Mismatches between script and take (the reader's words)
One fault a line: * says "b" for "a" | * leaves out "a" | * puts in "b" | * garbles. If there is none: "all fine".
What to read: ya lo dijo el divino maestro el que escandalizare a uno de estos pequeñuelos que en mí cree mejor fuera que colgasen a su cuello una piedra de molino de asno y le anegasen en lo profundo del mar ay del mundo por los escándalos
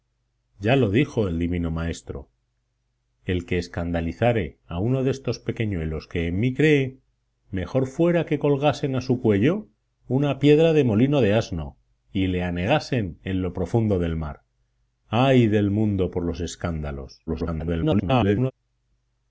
* garbles